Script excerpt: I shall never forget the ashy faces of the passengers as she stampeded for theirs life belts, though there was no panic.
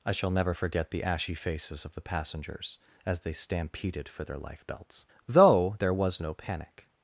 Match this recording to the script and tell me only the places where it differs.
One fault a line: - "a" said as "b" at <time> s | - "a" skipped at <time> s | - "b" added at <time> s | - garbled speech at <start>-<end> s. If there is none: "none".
- "she" said as "they" at 3.2 s
- "theirs" said as "their" at 4.2 s